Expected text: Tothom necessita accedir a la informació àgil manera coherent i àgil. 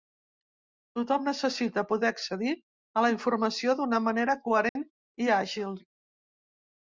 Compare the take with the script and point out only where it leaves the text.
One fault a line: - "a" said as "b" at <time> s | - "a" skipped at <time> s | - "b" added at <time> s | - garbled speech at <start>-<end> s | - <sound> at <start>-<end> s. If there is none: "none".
- "poder" added at 1.9 s
- "àgil" said as "d'una" at 3.8 s
- dropout at 4.7-4.8 s